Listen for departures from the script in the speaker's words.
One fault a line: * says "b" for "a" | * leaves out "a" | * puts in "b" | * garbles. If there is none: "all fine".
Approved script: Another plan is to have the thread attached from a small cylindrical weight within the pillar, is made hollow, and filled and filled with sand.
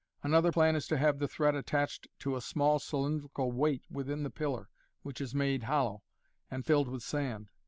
* says "to" for "from"
* puts in "which"
* leaves out "and filled"